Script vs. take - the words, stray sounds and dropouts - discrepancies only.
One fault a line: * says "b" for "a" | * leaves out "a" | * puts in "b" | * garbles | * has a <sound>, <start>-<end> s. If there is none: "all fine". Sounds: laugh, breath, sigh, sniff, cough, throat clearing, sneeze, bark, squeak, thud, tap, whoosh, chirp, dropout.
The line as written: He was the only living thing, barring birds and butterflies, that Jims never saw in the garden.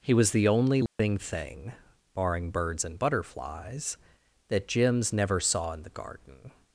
* has a dropout, 0.9-1.0 s